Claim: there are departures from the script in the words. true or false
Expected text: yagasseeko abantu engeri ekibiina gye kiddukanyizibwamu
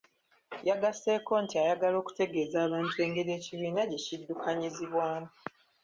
true